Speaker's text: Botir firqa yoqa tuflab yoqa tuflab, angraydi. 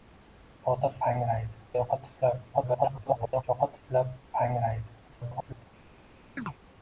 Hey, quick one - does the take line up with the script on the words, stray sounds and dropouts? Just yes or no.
no